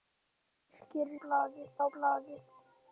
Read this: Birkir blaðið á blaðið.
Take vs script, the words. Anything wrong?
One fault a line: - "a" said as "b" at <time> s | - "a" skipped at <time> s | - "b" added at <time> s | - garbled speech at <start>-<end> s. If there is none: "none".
none